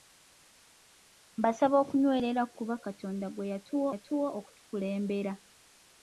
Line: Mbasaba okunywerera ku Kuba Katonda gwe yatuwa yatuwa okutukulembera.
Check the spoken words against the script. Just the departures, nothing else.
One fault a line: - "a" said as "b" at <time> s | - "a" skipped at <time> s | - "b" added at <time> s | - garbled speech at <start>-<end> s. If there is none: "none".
none